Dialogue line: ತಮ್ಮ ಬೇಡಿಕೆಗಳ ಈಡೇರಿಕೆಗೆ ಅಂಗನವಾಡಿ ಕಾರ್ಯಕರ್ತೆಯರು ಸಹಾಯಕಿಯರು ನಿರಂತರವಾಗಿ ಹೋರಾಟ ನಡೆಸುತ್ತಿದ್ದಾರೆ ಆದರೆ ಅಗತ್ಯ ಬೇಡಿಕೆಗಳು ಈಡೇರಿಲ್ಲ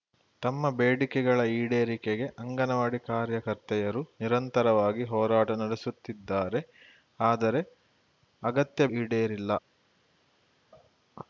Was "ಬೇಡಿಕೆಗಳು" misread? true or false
true